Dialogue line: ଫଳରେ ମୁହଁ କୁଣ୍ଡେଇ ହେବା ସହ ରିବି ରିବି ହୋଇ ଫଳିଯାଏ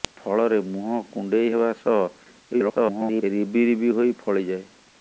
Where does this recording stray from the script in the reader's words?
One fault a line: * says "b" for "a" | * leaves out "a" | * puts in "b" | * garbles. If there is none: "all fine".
* garbles